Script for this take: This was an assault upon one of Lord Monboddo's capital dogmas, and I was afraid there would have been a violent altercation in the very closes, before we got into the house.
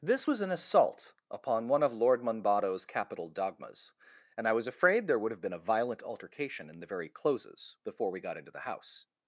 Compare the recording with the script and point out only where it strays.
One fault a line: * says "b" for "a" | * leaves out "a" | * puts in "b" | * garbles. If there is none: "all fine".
all fine